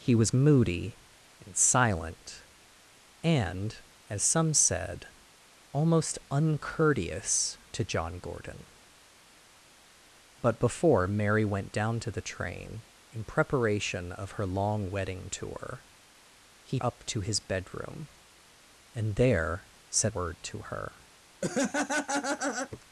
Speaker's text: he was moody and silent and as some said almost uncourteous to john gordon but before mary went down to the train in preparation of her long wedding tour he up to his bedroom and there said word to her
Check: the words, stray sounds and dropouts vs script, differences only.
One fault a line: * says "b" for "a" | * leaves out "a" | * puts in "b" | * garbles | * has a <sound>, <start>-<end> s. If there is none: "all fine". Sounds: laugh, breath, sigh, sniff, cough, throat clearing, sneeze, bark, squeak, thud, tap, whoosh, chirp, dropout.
* has a laugh, 21.4-22.8 s